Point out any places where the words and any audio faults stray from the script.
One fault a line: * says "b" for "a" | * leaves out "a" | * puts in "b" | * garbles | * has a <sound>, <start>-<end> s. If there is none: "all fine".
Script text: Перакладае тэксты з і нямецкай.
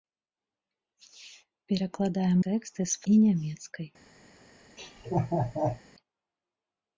* has a laugh, 4.8-5.8 s